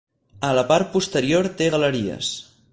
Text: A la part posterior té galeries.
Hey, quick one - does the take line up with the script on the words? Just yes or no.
yes